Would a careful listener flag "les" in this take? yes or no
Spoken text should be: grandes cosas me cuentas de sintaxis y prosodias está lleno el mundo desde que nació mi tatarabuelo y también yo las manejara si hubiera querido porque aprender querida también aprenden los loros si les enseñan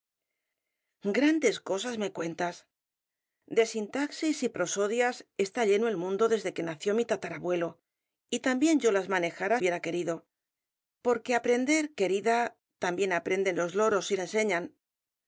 yes